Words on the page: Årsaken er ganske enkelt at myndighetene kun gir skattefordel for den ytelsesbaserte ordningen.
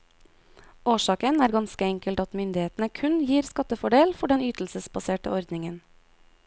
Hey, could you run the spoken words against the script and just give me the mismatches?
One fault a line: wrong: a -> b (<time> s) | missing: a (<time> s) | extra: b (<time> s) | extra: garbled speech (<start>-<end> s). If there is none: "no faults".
no faults